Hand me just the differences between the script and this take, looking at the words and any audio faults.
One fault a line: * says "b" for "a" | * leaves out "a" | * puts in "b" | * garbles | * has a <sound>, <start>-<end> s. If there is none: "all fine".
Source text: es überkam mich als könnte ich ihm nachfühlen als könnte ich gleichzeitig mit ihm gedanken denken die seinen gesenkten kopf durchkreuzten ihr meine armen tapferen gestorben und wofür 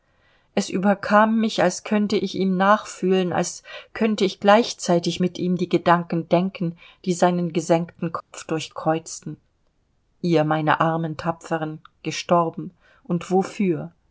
* puts in "die"
* has a dropout, 8.2-8.3 s